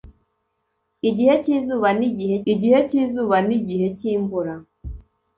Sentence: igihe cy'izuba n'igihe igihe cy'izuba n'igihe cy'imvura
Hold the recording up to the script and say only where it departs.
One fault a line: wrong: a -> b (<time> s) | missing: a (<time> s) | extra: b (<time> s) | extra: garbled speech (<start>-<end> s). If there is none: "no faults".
no faults